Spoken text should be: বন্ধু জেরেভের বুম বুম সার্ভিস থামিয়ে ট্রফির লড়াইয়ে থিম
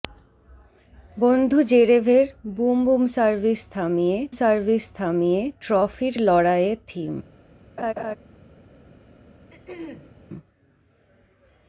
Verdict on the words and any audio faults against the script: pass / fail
fail